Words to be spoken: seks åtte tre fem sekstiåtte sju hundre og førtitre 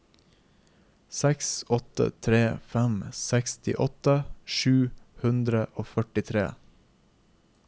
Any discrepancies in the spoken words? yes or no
no